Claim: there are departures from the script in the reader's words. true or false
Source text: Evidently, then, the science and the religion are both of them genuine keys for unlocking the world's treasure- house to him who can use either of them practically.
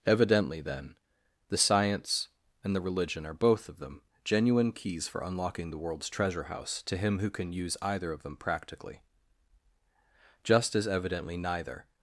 true